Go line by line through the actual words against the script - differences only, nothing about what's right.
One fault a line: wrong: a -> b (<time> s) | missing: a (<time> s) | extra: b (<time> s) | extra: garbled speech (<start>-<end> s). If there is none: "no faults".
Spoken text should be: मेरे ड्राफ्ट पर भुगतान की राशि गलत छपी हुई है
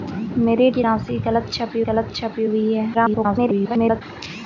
wrong: ड्राफ्ट पर भुगतान की राशि -> की राशि गलत छपी (0.7 s)
extra: garbled speech (2.9-4.0 s)